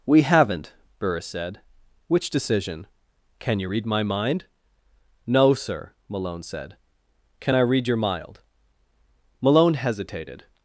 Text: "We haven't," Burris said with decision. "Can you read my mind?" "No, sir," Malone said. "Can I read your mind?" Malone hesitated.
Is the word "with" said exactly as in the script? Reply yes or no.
no